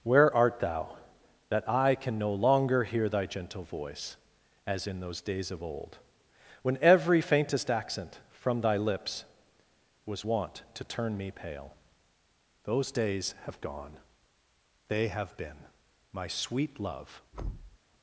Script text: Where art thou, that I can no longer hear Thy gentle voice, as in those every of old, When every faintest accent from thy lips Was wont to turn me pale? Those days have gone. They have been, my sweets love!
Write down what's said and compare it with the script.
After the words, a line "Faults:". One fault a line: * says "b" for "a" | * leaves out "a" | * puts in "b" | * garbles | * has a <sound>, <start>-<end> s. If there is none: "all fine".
Where art thou, that I can no longer hear Thy gentle voice, as in those days of old, When every faintest accent from thy lips Was wont to turn me pale? Those days have gone. They have been, my sweet love!
Faults:
* says "days" for "every"
* says "sweet" for "sweets"
* has a thud, 17.3-17.8 s